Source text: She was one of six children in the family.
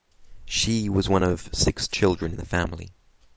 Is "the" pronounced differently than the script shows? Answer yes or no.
no